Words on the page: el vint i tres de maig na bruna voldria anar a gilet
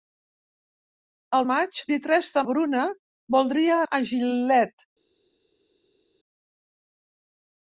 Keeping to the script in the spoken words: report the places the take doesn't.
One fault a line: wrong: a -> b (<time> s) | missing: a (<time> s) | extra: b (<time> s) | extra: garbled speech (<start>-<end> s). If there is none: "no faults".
wrong: vint -> maig (1.5 s)
missing: maig na (2.4 s)
missing: anar (3.8 s)